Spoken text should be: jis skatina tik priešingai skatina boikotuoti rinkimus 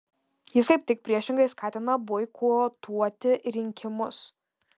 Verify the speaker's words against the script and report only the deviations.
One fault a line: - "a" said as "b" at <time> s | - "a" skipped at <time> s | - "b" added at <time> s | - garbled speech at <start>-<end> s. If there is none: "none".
- "skatina" said as "kaip" at 0.7 s